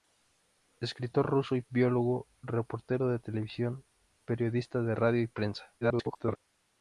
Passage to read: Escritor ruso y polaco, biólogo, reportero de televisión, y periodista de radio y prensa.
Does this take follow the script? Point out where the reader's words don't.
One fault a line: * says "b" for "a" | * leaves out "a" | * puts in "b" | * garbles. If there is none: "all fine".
* leaves out "polaco"
* leaves out "y"
* garbles